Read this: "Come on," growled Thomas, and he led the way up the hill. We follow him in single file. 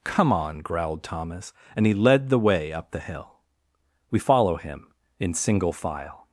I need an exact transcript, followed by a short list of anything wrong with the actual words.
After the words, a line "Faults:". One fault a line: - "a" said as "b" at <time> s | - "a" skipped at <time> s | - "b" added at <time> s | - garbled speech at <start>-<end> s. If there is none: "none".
"Come on," growled Thomas, and he led the way up the hill. We follow him in single file.
Faults:
none